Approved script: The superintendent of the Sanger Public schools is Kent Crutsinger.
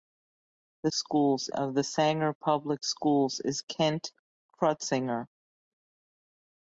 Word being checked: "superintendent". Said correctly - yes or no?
no